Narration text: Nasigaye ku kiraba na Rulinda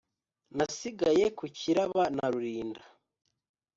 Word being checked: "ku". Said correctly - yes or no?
yes